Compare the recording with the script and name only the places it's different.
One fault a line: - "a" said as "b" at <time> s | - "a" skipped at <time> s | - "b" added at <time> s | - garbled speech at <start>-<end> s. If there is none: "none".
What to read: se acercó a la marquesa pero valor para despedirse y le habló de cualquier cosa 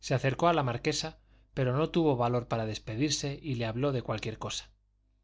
- "no tuvo" added at 1.8 s